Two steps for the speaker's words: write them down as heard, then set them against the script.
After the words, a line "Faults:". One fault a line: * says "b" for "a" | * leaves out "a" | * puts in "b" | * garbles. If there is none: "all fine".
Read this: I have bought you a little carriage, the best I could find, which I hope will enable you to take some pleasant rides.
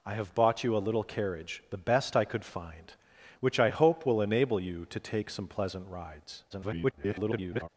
I have bought you a little carriage, the best I could find, which I hope will enable you to take some pleasant rides. [garbled]
Faults:
* garbles